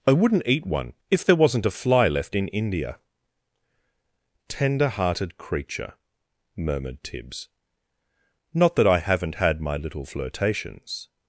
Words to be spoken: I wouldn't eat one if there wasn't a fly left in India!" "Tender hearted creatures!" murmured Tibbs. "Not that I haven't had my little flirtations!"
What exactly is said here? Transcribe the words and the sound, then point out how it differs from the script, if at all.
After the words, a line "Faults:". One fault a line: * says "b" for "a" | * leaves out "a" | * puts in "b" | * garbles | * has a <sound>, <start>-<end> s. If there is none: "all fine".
I wouldn't eat one if there wasn't a fly left in India!" "Tender hearted creature!" murmured Tibbs. "Not that I haven't had my little flirtations!"
Faults:
* says "creature" for "creatures"